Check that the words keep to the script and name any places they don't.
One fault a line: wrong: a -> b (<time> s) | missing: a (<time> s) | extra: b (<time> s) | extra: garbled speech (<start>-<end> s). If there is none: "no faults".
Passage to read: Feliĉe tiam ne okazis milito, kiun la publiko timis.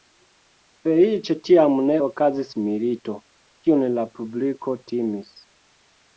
no faults